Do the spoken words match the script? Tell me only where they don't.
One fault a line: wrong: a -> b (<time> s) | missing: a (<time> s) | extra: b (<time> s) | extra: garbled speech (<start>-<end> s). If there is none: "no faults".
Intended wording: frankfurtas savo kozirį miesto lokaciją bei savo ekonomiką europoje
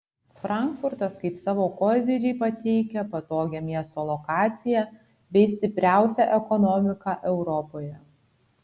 extra: kaip (1.2 s)
extra: pateikia patogią (2.4 s)
wrong: savo -> stipriausią (5.5 s)